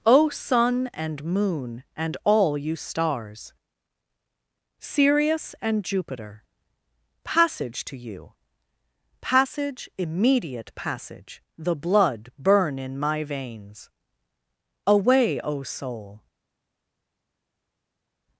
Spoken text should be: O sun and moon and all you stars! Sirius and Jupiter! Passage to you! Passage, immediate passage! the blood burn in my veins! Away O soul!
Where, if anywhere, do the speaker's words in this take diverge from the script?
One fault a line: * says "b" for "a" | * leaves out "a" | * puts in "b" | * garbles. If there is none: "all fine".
all fine